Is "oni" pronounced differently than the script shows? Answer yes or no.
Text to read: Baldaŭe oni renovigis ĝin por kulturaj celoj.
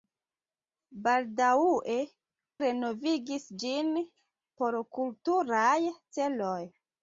yes